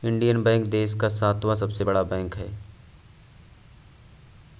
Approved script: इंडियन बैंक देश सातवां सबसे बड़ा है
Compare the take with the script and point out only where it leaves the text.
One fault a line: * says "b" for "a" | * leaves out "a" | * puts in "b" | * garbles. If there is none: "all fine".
* puts in "का"
* puts in "बैंक"